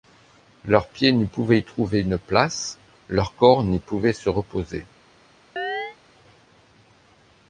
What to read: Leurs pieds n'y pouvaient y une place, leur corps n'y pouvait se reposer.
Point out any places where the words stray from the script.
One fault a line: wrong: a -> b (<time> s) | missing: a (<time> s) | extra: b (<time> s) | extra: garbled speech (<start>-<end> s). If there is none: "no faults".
extra: trouver (1.6 s)